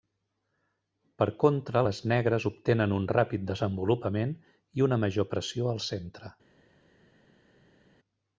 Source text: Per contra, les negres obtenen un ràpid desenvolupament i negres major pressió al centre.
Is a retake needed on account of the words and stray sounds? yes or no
yes